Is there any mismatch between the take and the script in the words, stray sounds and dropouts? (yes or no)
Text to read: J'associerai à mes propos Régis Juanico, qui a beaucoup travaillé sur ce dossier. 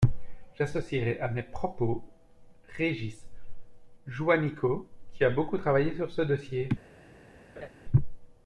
yes